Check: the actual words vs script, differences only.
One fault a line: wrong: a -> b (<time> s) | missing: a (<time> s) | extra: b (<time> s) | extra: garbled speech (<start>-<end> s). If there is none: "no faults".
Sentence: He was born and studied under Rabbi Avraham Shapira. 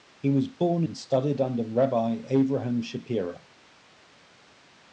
no faults